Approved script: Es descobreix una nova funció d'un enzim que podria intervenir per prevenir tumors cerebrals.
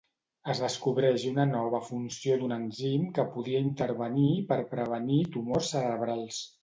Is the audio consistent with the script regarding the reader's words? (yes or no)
yes